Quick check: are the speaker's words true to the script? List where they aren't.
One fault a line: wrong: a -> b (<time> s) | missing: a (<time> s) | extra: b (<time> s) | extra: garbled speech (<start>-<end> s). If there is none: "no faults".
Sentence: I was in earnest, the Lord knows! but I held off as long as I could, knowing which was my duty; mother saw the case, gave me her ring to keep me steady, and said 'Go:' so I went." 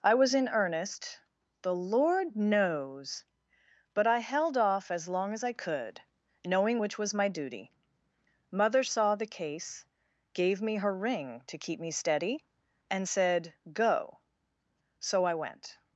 no faults